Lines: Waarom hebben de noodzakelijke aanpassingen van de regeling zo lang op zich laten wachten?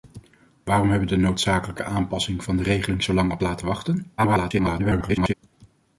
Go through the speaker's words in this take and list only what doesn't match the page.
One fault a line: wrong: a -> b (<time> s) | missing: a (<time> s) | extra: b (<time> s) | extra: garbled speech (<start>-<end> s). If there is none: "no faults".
missing: zich (3.4 s)
extra: garbled speech (4.2-5.3 s)